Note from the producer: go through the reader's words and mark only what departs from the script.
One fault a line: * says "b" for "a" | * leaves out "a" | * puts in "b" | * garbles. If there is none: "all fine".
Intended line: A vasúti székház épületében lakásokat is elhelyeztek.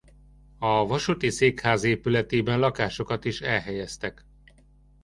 all fine